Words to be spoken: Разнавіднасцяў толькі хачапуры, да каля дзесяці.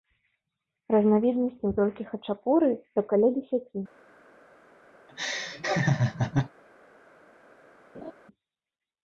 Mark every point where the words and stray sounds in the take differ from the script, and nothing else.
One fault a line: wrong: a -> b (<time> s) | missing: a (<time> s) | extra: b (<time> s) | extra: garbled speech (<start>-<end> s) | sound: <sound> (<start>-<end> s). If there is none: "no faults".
sound: laugh (5.1-6.5 s)
sound: laugh (7.9-8.1 s)